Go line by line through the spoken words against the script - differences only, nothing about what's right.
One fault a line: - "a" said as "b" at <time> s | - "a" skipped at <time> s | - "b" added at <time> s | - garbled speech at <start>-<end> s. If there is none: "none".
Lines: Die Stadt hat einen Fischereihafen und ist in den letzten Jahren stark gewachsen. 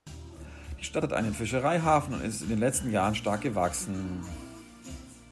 none